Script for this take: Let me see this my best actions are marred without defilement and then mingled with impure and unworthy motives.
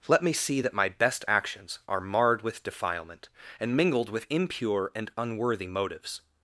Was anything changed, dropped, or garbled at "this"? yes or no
yes